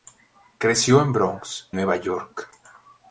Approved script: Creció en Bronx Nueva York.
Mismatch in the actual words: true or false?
false